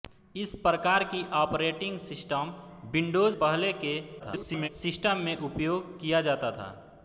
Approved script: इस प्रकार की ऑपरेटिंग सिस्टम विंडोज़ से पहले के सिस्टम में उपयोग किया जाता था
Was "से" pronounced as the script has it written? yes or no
no